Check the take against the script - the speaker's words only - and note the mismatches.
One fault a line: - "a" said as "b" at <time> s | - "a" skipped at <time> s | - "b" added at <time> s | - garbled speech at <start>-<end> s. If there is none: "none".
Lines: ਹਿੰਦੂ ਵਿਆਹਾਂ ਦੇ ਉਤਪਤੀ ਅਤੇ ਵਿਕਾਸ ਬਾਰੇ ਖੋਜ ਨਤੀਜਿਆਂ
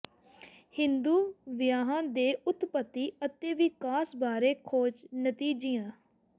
none